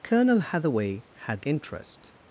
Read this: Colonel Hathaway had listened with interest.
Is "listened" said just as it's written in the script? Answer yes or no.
no